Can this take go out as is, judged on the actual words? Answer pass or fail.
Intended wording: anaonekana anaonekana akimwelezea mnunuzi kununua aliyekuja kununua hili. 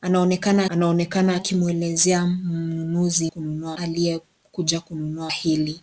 pass